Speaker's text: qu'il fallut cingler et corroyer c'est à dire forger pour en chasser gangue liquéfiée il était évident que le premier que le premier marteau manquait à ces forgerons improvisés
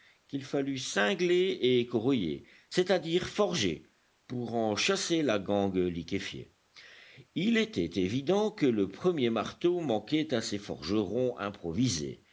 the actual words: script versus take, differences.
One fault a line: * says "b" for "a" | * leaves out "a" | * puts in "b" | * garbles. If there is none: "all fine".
* puts in "la"
* leaves out "que le premier"